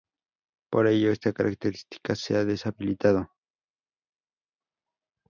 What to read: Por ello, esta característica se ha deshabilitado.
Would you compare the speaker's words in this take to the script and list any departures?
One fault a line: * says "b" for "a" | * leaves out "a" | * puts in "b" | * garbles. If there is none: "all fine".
all fine